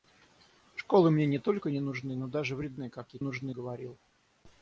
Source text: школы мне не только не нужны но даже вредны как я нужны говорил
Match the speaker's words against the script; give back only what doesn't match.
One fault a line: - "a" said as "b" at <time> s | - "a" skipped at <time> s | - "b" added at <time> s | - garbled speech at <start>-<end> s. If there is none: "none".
none